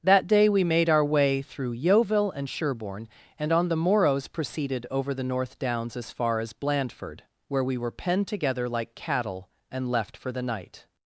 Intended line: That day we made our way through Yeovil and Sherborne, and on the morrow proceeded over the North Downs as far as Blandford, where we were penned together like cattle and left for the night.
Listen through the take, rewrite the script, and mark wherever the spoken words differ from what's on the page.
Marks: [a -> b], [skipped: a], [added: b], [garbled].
That day we made our way through Yeovil and Sherborne, and on the [morrow -> morrows] proceeded over the North Downs as far as Blandford, where we were penned together like cattle and left for the night.